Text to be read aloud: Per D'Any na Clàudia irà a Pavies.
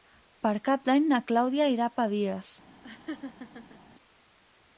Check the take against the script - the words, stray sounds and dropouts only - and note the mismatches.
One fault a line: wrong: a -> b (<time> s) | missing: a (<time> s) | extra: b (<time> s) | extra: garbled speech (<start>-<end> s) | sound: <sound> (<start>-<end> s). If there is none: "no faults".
extra: Cap (0.7 s)
sound: laugh (2.8-3.8 s)